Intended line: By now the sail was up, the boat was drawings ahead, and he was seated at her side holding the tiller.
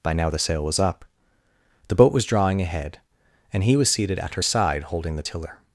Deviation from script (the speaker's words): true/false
true